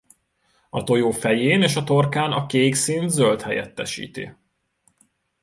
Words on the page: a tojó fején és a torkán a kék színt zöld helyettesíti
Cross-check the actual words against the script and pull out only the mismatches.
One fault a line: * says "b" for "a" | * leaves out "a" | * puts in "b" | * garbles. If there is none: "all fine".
all fine